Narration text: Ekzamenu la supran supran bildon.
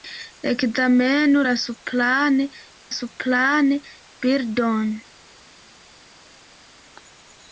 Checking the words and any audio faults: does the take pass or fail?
pass